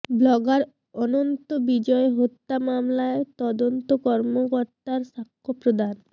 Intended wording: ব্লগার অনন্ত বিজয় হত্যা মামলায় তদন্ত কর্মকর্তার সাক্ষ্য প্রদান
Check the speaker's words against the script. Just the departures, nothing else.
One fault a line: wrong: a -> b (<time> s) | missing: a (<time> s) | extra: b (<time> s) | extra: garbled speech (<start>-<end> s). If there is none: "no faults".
no faults